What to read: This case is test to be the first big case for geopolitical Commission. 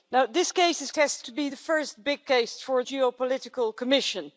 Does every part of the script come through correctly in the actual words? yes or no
yes